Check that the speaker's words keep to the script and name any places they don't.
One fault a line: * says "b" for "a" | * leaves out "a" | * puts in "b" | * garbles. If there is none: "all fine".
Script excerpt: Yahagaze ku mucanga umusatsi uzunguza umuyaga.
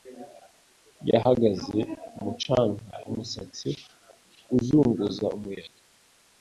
all fine